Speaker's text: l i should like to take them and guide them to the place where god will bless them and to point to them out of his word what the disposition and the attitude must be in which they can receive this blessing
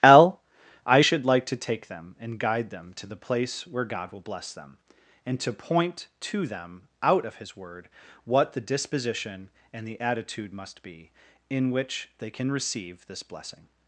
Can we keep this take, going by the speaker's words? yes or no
yes